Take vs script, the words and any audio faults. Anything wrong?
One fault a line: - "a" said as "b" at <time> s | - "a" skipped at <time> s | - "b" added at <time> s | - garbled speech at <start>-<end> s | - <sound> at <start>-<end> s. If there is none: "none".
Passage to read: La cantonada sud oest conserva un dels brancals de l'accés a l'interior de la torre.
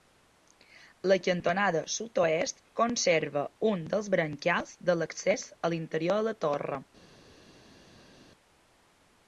none